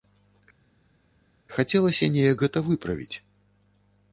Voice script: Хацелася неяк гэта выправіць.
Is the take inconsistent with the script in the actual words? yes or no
no